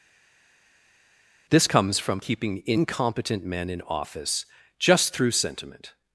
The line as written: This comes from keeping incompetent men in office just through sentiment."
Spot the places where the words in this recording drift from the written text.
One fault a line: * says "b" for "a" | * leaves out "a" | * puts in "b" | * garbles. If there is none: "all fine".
all fine